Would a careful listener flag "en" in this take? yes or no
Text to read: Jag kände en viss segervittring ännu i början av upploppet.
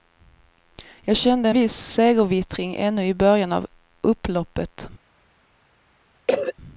yes